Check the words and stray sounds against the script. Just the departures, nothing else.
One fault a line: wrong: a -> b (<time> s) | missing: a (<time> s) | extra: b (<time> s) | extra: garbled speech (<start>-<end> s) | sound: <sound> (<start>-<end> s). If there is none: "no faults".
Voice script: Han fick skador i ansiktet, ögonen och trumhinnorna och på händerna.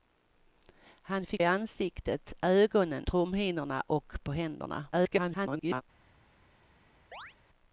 missing: skador (1.4 s)
missing: och (3.0 s)
extra: garbled speech (4.9-5.8 s)
sound: chirp (7.1-7.3 s)